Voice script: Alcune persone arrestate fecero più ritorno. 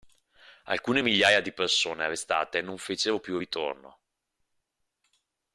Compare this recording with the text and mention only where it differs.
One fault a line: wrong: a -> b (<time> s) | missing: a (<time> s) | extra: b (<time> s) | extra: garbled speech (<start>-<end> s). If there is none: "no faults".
extra: migliaia di (1.0 s)
extra: non (2.6 s)